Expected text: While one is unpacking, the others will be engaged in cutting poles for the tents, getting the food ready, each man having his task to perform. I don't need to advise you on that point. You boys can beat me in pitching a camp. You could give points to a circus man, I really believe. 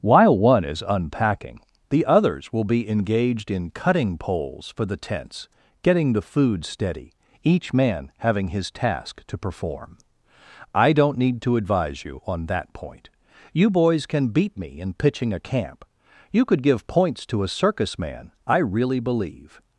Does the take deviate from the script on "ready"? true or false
true